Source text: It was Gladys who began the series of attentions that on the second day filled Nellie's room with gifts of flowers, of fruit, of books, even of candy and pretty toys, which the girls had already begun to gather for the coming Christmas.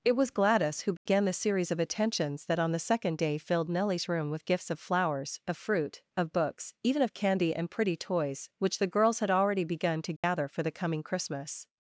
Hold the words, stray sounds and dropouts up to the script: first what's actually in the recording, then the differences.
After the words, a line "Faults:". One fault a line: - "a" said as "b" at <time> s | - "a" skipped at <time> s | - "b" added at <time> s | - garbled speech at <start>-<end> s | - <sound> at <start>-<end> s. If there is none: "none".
It was Gladys who began the series of attentions that on the second day filled Nellie's room with gifts of flowers, of fruit, of books, even of candy and pretty toys, which the girls had already begun to gather for the coming Christmas.
Faults:
- dropout at 1.0-1.1 s
- dropout at 10.2-10.2 s